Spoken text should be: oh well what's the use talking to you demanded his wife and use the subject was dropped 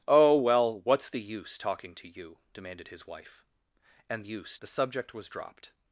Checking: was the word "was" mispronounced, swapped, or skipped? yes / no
no